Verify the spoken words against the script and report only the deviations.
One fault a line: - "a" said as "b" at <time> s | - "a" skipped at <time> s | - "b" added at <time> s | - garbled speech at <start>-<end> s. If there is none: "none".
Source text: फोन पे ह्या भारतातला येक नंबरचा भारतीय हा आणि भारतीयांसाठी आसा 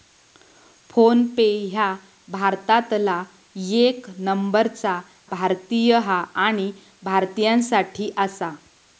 none